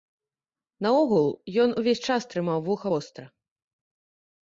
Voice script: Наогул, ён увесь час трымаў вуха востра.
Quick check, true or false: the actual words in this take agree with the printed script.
true